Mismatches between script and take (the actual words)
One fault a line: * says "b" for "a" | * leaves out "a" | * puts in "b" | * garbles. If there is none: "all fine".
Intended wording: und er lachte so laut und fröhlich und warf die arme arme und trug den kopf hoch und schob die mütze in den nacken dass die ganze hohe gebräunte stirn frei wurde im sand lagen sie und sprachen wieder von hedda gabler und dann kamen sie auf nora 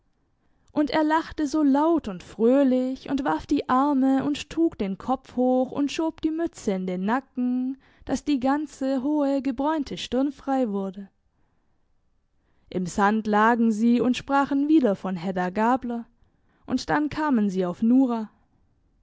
* leaves out "arme"